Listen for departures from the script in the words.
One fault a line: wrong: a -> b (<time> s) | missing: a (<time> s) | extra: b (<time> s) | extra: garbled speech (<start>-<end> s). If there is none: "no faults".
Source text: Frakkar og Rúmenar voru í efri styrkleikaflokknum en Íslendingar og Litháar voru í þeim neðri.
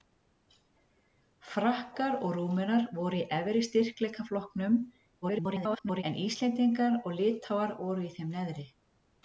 extra: garbled speech (5.2-6.0 s)